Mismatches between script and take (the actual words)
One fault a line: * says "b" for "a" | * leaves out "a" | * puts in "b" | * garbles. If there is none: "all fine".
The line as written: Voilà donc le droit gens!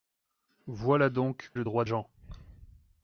all fine